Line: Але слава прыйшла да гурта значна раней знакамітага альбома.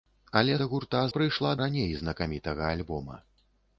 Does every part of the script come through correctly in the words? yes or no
no